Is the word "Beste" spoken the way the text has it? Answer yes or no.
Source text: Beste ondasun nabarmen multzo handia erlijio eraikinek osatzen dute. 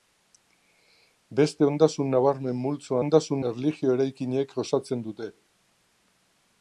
yes